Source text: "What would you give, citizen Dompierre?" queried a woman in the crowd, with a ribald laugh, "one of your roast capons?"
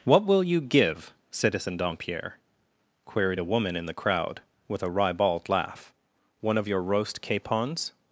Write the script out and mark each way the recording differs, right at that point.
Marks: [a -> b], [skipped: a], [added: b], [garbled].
"What [would -> will] you give, citizen Dompierre?" queried a woman in the crowd, with a ribald laugh, "one of your roast capons?"